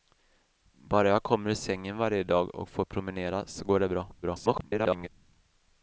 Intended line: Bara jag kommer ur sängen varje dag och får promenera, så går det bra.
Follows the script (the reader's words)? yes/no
no